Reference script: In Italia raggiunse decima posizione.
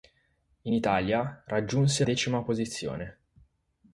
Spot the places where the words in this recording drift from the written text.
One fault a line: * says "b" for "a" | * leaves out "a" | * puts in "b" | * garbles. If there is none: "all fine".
all fine